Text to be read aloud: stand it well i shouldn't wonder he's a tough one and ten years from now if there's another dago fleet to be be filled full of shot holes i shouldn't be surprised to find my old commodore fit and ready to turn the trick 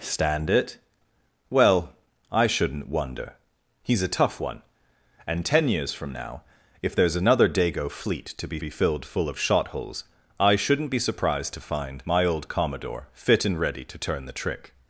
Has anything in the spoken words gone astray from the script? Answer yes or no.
no